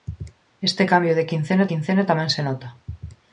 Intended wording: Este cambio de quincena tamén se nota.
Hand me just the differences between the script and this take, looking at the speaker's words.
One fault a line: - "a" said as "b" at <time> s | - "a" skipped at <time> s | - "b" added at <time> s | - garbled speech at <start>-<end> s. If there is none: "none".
- "quincena" added at 1.7 s